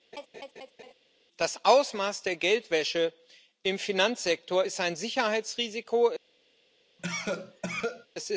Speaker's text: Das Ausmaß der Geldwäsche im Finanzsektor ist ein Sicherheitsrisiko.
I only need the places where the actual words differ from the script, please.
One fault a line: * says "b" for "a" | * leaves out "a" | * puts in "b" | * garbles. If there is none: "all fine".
all fine